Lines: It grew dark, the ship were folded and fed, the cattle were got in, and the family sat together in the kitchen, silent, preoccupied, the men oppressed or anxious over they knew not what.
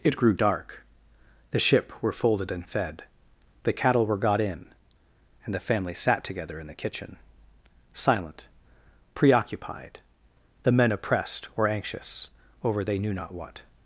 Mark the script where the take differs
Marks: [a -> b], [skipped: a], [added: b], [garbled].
It grew dark, the ship were folded and fed, the cattle were got in, and the family sat together in the kitchen, silent, preoccupied, the men oppressed or anxious over they knew not what.